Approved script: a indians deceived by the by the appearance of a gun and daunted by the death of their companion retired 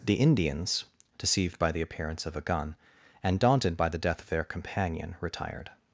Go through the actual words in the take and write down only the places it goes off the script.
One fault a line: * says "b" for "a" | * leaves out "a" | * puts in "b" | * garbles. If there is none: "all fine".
* says "the" for "a"
* leaves out "by the"